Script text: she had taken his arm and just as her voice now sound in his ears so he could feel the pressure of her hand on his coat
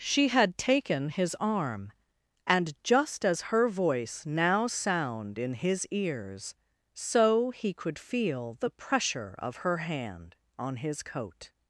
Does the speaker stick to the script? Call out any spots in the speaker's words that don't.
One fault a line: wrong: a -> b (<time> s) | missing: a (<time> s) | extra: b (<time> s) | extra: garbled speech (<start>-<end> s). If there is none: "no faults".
no faults